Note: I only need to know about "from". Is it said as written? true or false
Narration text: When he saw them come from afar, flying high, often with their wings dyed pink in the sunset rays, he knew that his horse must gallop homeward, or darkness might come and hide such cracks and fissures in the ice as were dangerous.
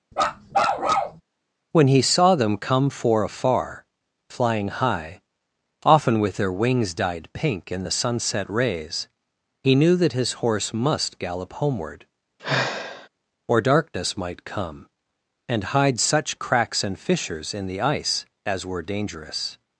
false